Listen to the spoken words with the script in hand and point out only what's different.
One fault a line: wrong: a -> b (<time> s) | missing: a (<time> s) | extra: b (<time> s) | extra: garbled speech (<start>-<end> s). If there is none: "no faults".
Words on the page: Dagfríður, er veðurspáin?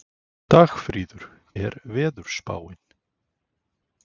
no faults